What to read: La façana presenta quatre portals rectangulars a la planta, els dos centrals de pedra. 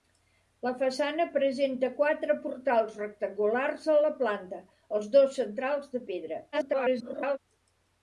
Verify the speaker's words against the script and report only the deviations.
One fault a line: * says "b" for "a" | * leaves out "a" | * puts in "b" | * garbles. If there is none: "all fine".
* garbles